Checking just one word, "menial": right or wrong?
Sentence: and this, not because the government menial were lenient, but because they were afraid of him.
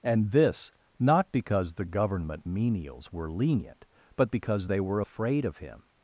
wrong